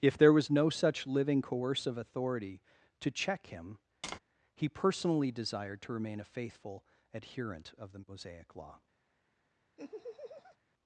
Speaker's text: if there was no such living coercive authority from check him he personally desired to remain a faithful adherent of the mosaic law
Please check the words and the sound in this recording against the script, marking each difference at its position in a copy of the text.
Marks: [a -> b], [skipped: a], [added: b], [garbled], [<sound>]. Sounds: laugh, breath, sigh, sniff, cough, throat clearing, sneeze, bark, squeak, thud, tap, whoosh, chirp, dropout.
if there was no such living coercive authority [from -> to] check him [tap] he personally desired to remain a faithful adherent of the mosaic law [laugh]